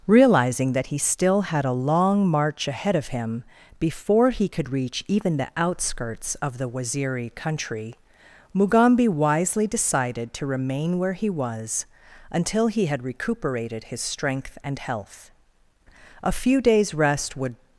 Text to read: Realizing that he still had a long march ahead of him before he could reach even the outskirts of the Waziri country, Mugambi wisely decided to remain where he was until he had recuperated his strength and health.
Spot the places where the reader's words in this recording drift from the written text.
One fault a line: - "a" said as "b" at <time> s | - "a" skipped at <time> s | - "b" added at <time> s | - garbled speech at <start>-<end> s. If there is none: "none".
- "A few days rest would" added at 16.2 s